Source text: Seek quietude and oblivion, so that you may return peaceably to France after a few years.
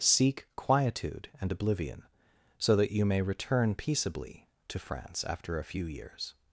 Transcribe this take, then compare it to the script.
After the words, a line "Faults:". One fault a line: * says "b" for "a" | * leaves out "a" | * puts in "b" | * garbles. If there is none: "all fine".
Seek quietude and oblivion, so that you may return peaceably to France after a few years.
Faults:
all fine